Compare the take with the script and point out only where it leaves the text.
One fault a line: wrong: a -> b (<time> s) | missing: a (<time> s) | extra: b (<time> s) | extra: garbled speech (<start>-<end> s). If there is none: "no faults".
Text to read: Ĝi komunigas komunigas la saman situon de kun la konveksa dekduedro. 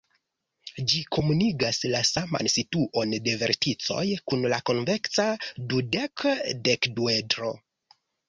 missing: komunigas (1.8 s)
extra: verticoj (3.4 s)
extra: dudek (5.7 s)